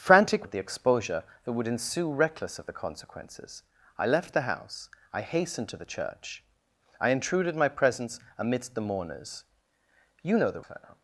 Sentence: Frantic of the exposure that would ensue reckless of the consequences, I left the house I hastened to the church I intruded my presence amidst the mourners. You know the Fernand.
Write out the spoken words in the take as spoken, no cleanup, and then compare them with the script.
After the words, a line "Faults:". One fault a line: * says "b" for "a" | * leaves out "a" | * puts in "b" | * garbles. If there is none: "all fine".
Frantic of the exposure that would ensue reckless of the consequences, I left the house I hastened to the church I intruded my presence amidst the mourners. You know the Fernand.
Faults:
all fine